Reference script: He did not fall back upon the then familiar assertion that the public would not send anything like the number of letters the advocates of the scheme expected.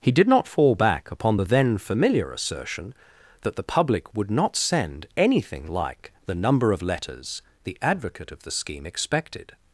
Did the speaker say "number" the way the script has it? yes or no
yes